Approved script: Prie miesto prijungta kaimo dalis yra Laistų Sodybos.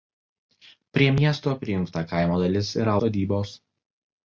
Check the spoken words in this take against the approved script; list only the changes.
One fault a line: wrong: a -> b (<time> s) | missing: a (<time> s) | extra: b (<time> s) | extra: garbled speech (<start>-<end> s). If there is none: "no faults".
missing: Laistų (3.0 s)